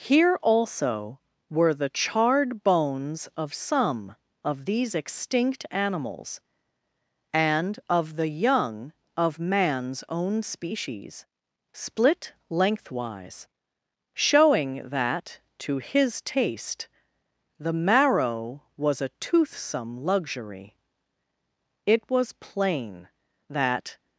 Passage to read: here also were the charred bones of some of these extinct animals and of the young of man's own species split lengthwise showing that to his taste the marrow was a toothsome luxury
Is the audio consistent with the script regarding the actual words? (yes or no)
no